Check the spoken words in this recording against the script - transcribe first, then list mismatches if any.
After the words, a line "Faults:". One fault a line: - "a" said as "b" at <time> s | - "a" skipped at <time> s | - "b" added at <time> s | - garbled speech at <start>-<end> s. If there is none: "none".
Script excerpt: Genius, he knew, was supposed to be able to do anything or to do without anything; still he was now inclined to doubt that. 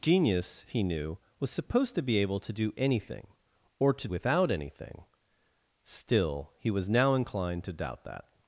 Genius, he knew, was supposed to be able to do anything or to without anything; still he was now inclined to doubt that.
Faults:
- "do" skipped at 4.1 s